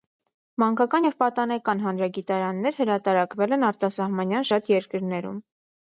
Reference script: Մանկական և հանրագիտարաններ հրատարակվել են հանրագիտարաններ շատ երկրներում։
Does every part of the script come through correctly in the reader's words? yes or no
no